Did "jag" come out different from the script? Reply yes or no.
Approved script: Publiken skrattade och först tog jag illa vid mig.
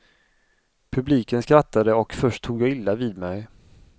no